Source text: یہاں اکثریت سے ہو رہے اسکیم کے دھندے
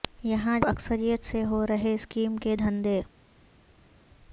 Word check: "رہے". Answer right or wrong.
right